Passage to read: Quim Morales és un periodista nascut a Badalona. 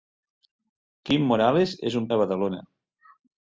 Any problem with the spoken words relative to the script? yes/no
yes